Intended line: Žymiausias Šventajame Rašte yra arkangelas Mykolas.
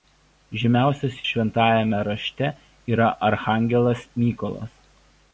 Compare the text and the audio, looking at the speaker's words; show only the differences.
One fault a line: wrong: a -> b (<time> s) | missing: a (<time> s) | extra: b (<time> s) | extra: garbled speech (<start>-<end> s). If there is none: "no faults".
no faults